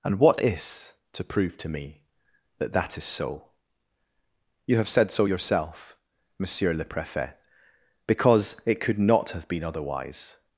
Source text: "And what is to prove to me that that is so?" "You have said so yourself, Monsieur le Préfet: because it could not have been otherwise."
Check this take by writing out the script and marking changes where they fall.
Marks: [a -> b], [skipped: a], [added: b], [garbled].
"And what is to prove to me that that is so?" "You have said so yourself, Monsieur le Préfet: because it could not have been otherwise."